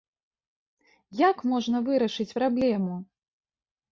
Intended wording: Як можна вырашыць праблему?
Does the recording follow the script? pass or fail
pass